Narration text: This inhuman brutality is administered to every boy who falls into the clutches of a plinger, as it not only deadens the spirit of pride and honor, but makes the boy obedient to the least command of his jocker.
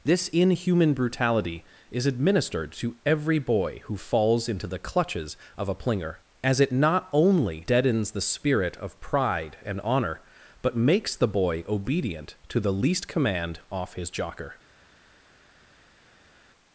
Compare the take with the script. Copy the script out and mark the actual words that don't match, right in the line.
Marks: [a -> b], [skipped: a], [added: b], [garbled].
This inhuman brutality is administered to every boy who falls into the clutches of a plinger, as it not only deadens the spirit of pride and honor, but makes the boy obedient to the least command [of -> off] his jocker.